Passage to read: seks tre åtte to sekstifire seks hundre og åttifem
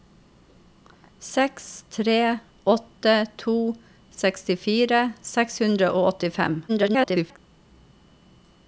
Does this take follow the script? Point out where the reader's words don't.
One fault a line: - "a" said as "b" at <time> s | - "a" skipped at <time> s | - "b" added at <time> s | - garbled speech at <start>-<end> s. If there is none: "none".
- garbled speech at 6.7-7.4 s